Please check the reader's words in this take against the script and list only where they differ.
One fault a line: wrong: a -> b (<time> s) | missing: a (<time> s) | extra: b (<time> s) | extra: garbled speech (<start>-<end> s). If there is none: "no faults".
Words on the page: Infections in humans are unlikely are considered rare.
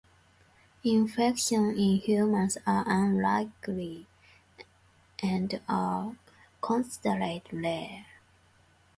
extra: and (5.2 s)